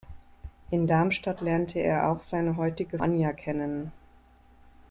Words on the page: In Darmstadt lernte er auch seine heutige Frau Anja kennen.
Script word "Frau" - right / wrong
wrong